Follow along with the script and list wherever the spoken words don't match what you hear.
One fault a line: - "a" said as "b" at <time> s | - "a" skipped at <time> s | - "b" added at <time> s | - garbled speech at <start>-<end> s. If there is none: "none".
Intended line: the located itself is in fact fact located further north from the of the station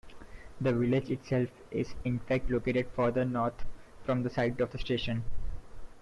- "located" said as "village" at 0.7 s
- "fact" skipped at 2.5 s
- "site" added at 4.3 s